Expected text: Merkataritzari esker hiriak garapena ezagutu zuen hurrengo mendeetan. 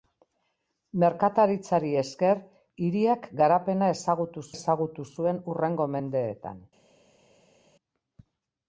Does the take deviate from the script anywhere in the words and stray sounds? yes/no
yes